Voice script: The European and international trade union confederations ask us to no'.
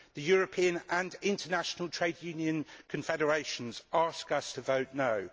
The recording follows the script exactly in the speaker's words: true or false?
false